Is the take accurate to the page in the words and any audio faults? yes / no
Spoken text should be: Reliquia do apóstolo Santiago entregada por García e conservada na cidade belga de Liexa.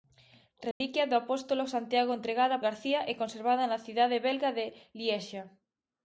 no